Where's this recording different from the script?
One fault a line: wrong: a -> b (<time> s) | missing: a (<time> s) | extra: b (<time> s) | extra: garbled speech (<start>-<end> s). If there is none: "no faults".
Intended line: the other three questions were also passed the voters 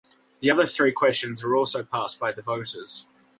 extra: by (2.2 s)